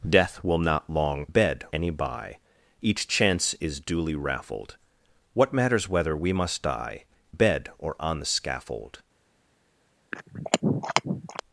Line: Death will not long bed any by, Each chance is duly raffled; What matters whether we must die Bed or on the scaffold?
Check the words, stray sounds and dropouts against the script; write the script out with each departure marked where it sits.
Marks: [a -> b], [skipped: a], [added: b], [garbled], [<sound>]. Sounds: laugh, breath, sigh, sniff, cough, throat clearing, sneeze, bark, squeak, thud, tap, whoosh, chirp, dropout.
Death will not long bed any by, Each chance is duly raffled; What matters whether we must die Bed or on the scaffold? [throat clearing]